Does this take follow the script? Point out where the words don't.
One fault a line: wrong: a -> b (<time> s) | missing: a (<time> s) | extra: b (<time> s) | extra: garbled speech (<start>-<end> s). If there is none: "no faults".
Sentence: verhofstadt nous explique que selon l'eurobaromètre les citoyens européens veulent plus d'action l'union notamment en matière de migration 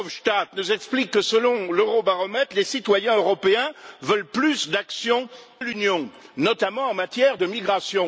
no faults